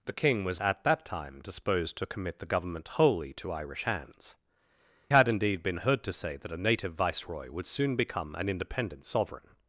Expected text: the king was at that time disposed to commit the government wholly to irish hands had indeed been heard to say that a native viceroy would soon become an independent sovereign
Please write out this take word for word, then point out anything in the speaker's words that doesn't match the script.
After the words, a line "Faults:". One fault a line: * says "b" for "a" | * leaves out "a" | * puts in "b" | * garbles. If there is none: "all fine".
the king was at that time disposed to commit the government wholly to irish hands had indeed been heard to say that a native viceroy would soon become an independent sovereign
Faults:
all fine